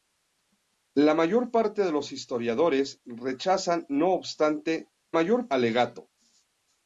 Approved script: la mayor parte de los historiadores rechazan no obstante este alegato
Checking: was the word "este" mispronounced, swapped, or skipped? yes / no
yes